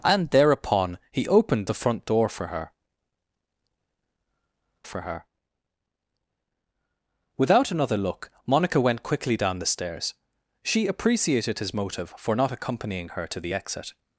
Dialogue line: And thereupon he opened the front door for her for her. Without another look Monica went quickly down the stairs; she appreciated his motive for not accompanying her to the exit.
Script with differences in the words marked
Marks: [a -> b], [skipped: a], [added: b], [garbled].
And thereupon he opened the front door for her for her. Without another look Monica went quickly down the stairs; she appreciated his motive for not accompanying her to the exit.